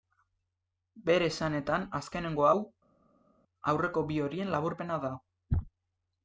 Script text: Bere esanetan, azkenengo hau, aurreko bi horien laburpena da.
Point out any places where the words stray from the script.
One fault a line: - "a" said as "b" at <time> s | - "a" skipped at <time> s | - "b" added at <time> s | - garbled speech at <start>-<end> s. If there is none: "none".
none